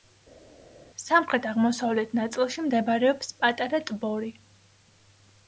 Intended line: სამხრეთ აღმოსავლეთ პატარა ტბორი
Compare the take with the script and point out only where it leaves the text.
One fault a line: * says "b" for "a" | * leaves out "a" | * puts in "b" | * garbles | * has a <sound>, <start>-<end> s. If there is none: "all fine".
* puts in "ნაწილში მდებარეობს"